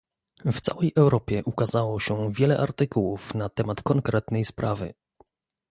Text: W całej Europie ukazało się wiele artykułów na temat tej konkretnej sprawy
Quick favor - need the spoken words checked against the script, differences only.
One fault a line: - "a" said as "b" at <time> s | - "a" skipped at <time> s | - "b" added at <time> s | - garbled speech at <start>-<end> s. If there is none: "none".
- "tej" skipped at 3.8 s